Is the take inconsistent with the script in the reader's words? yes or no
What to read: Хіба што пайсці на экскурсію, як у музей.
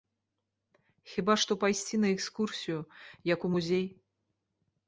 no